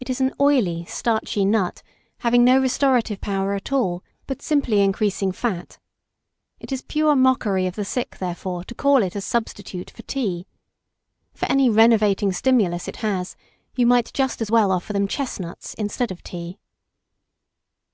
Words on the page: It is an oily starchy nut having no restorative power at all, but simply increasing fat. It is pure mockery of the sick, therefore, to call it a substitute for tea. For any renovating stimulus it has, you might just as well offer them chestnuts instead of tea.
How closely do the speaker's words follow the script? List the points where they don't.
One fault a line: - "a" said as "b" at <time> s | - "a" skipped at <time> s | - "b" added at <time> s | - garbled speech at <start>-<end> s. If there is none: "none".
none